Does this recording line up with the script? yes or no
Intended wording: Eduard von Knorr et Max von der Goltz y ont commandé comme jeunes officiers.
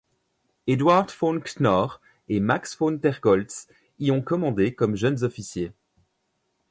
yes